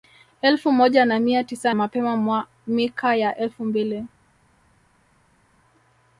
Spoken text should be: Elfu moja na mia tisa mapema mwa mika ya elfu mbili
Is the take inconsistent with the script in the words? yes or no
no